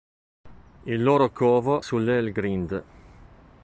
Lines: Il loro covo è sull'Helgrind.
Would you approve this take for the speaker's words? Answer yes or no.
no